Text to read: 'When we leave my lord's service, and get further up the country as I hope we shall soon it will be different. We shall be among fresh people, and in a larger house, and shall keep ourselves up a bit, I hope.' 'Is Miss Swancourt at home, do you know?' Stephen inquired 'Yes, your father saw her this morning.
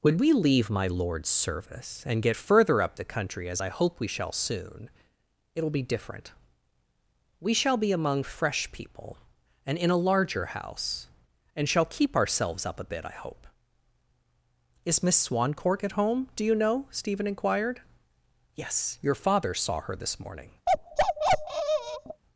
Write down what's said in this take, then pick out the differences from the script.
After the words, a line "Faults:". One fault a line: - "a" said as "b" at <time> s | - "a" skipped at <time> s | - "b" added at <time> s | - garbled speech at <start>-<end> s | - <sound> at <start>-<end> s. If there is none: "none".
'When we leave my lord's service, and get further up the country as I hope we shall soon it will be different. We shall be among fresh people, and in a larger house, and shall keep ourselves up a bit, I hope.' 'Is Miss Swancourt at home, do you know?' Stephen inquired 'Yes, your father saw her this morning.
Faults:
- bark at 20.7-22.2 s